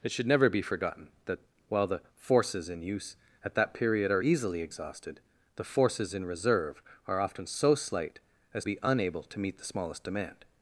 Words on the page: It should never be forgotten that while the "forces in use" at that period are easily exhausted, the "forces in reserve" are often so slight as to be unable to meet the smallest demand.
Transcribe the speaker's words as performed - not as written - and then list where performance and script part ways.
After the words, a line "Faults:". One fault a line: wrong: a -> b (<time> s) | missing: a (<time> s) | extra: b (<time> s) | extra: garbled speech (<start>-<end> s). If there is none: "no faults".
It should never be forgotten that while the "forces in use" at that period are easily exhausted, the "forces in reserve" are often so slight as be unable to meet the smallest demand.
Faults:
missing: to (8.6 s)